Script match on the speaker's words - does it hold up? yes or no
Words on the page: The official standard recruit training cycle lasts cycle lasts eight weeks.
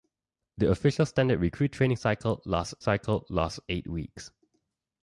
yes